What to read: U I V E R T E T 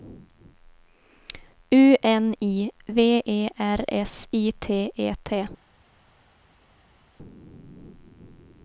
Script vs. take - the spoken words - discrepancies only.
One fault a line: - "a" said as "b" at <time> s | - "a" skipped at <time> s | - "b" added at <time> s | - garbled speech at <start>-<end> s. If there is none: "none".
- "N" added at 2.0 s
- "S I" added at 3.9 s